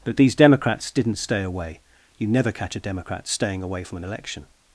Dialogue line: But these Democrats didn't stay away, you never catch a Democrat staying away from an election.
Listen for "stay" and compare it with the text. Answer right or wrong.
right